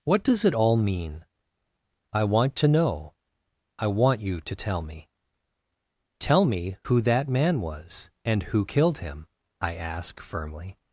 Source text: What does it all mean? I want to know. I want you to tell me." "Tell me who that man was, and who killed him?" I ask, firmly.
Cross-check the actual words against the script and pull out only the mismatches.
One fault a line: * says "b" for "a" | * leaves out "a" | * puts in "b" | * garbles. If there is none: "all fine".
all fine